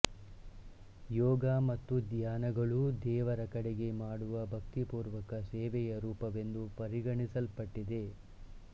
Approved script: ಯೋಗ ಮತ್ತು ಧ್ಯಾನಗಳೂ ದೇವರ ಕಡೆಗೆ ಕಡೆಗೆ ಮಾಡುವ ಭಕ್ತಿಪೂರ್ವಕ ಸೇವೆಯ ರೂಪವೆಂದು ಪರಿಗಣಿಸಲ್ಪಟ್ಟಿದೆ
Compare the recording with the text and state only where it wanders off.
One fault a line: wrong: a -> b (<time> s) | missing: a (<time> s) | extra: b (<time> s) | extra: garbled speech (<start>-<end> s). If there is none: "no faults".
missing: ಕಡೆಗೆ (3.9 s)